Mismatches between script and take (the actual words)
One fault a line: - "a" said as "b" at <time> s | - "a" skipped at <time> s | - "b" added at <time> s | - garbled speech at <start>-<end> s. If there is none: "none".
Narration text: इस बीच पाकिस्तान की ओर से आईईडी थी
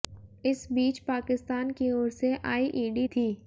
none